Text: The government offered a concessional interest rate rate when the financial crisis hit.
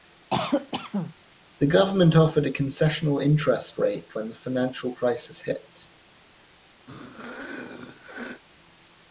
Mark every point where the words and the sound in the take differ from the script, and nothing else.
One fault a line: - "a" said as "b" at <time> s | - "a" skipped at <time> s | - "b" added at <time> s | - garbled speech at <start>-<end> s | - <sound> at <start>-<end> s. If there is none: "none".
- cough at 0.3-1.1 s
- "rate" skipped at 4.2 s
- throat clearing at 6.9-8.4 s